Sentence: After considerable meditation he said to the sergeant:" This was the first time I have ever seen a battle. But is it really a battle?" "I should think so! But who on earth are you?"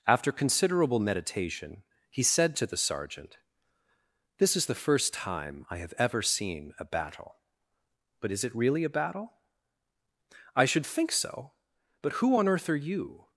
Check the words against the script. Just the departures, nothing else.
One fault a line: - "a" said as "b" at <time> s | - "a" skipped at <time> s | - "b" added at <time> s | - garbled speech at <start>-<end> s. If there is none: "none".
- "was" said as "is" at 4.5 s